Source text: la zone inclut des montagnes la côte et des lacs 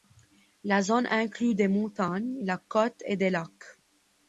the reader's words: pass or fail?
pass